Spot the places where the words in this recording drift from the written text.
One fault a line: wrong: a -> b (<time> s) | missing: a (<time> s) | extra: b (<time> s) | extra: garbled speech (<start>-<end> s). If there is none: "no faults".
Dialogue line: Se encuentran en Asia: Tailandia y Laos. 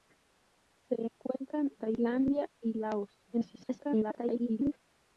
missing: en Asia (1.7 s)
extra: garbled speech (3.3-4.7 s)